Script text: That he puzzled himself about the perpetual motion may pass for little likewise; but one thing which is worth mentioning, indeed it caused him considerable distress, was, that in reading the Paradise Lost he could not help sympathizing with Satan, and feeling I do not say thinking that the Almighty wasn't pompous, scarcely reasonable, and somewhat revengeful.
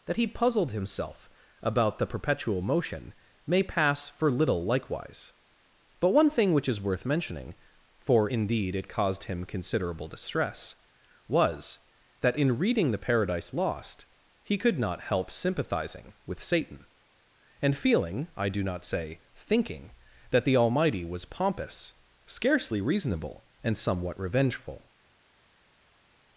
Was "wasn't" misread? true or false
true